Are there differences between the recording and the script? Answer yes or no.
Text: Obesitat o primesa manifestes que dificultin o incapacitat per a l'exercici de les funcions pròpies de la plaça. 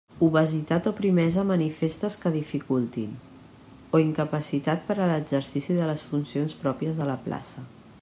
no